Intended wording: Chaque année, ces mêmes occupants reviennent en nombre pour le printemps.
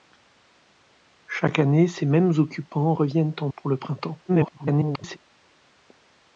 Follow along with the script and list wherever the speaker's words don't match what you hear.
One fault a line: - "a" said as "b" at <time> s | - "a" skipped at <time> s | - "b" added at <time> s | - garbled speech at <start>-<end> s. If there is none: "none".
- "nombre" skipped at 3.5 s
- garbled speech at 4.3-5.2 s